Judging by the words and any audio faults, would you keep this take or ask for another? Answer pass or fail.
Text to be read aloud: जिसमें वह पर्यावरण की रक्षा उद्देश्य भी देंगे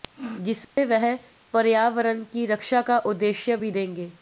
fail